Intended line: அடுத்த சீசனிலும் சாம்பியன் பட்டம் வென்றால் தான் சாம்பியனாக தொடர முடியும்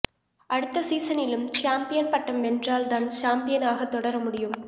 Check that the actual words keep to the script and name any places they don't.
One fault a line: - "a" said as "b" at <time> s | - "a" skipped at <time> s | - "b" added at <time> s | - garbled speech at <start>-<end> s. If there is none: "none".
none